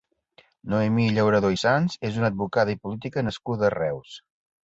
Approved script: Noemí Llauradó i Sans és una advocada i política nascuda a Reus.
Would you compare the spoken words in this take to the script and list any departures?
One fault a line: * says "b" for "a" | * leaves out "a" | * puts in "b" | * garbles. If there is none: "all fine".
all fine